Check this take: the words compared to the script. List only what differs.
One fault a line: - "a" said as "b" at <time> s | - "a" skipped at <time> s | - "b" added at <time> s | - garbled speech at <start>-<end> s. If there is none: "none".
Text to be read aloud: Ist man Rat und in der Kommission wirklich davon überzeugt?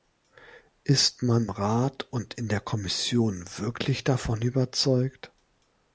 none